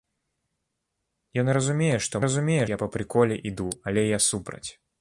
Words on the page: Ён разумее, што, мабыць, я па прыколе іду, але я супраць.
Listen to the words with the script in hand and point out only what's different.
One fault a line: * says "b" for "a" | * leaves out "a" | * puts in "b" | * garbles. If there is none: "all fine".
* says "разумее" for "мабыць"